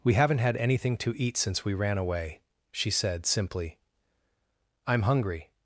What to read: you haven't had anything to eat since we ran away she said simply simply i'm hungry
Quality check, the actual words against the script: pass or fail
fail